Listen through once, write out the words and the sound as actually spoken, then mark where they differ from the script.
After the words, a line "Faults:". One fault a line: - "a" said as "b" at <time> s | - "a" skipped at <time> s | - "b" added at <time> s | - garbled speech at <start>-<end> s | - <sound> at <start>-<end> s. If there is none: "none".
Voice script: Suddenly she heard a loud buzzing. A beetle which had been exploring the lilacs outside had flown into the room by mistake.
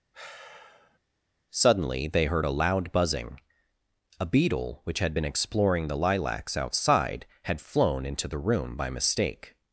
Suddenly they heard a loud buzzing. A beetle which had been exploring the lilacs outside had flown into the room by mistake.
Faults:
- sigh at 0.1-1.0 s
- "she" said as "they" at 2.1 s